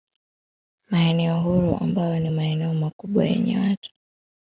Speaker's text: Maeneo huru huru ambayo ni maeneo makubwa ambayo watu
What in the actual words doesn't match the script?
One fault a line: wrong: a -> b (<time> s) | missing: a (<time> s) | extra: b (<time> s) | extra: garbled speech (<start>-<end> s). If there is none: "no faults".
missing: huru (1.8 s)
wrong: ambayo -> yenye (3.2 s)